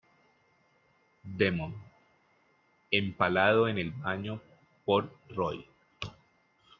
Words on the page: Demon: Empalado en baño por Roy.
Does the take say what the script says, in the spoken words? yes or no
no